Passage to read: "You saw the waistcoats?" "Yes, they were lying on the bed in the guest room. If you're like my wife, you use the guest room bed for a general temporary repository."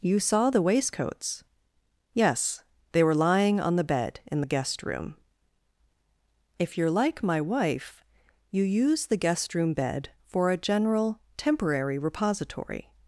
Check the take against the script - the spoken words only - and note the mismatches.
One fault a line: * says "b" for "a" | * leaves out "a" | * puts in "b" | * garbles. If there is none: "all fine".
all fine